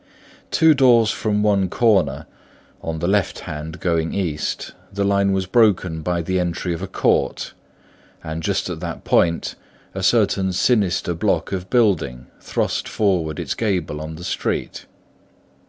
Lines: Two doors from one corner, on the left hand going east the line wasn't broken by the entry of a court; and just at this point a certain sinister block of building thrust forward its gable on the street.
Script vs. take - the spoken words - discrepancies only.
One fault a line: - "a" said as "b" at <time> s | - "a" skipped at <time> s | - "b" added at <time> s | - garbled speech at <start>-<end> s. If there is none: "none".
- "wasn't" said as "was" at 5.3 s
- "this" said as "that" at 8.8 s